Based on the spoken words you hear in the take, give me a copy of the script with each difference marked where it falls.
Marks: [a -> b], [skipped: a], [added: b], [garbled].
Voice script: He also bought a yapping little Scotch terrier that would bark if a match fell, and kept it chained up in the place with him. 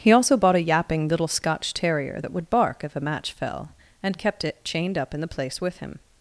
He also bought a yapping little Scotch terrier that would bark if a match fell, and kept it chained up in the place with him.